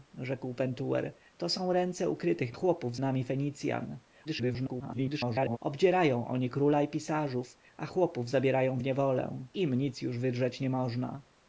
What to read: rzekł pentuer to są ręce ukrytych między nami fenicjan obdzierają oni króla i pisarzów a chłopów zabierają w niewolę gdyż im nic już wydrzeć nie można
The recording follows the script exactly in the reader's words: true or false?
false